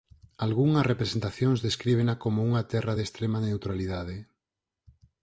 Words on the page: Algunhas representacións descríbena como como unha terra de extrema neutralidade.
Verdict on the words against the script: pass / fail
fail